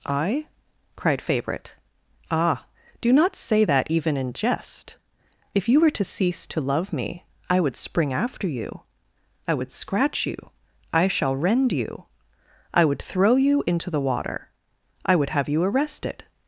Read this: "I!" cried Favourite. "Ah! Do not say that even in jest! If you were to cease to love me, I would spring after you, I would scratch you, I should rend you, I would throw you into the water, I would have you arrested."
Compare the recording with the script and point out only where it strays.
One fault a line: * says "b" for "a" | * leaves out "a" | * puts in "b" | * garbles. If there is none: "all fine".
* says "shall" for "should"